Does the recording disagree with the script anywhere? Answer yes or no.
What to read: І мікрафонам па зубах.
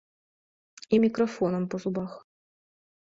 no